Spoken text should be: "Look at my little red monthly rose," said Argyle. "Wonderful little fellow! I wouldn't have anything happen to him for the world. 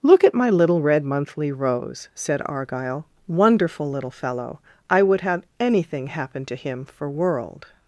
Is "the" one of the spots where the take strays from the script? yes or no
yes